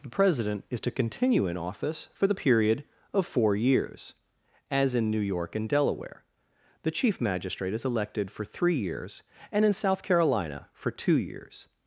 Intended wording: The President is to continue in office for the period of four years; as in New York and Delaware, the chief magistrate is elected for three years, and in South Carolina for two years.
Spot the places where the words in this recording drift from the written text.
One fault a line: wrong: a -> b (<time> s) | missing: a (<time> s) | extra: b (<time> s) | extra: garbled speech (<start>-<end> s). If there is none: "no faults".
no faults